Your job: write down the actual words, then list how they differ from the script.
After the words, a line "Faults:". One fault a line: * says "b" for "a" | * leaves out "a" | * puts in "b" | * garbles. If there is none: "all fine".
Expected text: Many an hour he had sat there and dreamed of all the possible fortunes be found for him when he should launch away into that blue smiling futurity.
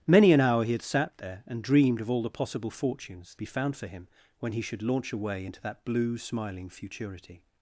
Many an hour he had sat there and dreamed of all the possible fortunes be found for him when he should launch away into that blue smiling futurity.
Faults:
all fine